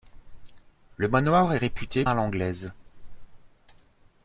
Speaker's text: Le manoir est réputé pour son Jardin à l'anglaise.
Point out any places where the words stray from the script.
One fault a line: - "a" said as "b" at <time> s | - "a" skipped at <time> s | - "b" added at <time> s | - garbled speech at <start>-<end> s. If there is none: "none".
- "pour son Jardin" skipped at 2.0 s